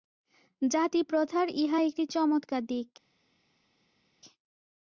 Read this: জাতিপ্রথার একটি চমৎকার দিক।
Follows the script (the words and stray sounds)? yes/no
no